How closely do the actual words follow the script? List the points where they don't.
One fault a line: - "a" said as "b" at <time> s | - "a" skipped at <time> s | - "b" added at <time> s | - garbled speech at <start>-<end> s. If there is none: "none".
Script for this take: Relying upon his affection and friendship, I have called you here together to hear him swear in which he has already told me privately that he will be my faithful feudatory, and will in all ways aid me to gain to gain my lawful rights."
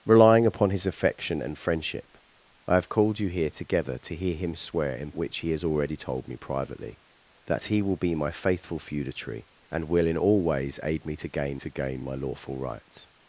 none